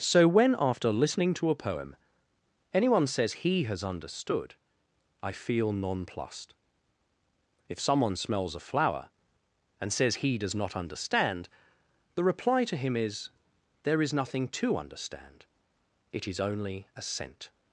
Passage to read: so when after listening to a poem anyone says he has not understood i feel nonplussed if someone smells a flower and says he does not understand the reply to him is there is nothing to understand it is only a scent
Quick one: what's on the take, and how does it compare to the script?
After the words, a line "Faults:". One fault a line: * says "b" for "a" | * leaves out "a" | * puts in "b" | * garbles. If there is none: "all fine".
so when after listening to a poem anyone says he has understood i feel nonplussed if someone smells a flower and says he does not understand the reply to him is there is nothing to understand it is only a scent
Faults:
* leaves out "not"